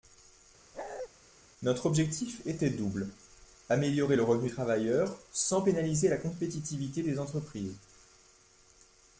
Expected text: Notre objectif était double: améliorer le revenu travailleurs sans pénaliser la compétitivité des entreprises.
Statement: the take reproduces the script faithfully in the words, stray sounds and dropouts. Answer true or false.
false